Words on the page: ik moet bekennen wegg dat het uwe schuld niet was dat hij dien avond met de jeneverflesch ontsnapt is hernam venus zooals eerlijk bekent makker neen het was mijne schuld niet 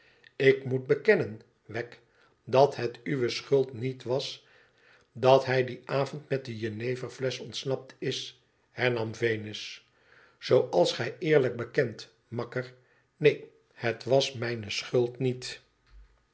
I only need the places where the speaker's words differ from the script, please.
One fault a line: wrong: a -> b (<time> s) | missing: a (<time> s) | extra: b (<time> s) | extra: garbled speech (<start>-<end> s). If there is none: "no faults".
extra: gij (10.9 s)